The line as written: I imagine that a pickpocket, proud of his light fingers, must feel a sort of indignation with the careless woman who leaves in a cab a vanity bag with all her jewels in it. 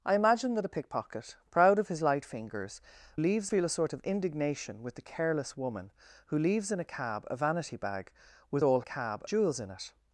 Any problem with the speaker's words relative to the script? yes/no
yes